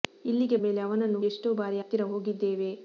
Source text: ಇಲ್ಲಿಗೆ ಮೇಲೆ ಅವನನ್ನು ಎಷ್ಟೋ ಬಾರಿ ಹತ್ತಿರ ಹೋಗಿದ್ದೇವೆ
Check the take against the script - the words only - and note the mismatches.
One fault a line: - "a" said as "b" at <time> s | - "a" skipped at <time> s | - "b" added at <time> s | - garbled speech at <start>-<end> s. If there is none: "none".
none